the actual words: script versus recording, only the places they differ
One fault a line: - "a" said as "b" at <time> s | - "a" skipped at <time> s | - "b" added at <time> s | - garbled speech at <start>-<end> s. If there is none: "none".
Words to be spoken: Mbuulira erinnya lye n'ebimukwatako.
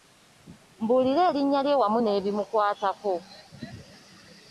- "wamu" added at 1.8 s